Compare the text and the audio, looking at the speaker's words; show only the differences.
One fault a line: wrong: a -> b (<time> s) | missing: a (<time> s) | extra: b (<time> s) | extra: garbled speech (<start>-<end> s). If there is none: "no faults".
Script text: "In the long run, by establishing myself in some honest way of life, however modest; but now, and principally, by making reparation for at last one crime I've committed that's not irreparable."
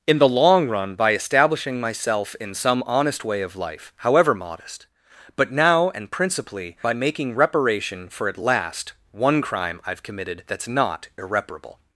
no faults